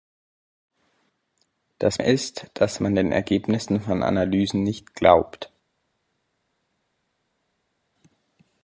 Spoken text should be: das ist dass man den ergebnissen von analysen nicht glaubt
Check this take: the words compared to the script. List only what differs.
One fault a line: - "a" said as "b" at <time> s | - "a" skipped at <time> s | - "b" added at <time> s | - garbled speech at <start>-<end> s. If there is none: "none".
none